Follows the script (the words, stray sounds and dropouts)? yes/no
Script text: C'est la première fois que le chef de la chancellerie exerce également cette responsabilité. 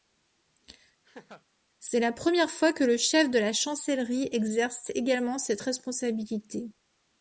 no